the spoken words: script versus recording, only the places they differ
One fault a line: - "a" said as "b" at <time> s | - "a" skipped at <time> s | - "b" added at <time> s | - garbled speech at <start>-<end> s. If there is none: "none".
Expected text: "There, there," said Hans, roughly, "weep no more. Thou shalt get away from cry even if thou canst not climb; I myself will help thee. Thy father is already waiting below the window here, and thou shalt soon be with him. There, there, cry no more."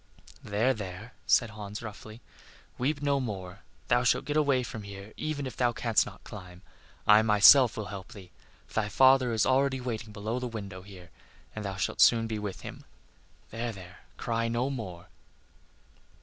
- "cry" said as "here" at 4.8 s